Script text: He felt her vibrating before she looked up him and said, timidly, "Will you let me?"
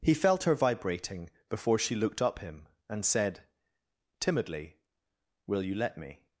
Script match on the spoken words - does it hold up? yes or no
yes